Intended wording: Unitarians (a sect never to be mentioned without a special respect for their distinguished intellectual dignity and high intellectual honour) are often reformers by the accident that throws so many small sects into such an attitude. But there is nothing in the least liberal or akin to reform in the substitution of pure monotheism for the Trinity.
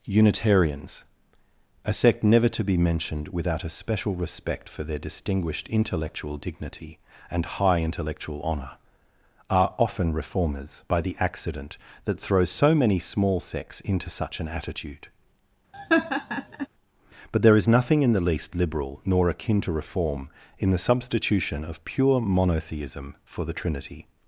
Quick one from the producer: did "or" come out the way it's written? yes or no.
no